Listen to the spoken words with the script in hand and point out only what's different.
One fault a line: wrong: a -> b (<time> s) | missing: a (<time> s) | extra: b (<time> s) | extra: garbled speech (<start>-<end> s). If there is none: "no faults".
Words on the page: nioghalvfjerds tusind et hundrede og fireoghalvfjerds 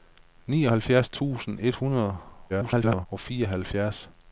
extra: garbled speech (2.5-3.1 s)